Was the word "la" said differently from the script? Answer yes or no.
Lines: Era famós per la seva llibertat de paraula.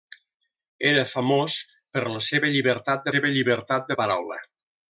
no